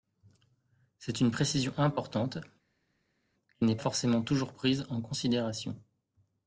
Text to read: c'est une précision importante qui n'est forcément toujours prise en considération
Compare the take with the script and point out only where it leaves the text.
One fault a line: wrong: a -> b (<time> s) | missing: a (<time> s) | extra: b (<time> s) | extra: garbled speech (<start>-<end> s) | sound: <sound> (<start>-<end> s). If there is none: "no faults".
no faults